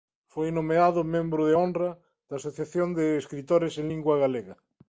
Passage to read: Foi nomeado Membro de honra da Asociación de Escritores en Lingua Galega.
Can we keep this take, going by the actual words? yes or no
yes